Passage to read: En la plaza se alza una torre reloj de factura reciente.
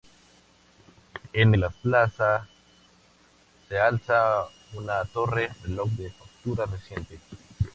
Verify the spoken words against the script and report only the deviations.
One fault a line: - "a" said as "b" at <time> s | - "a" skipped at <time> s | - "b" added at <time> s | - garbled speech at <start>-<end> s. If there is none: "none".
none